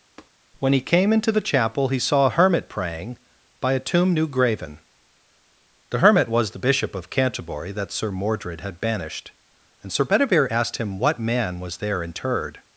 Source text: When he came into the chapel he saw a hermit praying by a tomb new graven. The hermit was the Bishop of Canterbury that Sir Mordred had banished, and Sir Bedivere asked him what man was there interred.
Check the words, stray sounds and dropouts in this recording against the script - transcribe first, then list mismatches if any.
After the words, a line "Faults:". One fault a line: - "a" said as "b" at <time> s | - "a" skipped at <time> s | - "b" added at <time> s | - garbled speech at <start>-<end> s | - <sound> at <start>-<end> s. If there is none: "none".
When he came into the chapel he saw a hermit praying by a tomb new graven. The hermit was the Bishop of Canterbury that Sir Mordred had banished, and Sir Bedivere asked him what man was there interred.
Faults:
- tap at 0.2-0.3 s